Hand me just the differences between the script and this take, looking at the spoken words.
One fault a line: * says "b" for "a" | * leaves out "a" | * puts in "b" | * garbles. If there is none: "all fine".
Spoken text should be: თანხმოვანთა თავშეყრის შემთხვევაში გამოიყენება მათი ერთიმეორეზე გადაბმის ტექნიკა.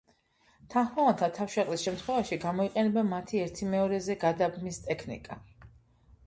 all fine